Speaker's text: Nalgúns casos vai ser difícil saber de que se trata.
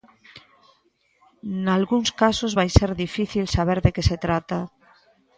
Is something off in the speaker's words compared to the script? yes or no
no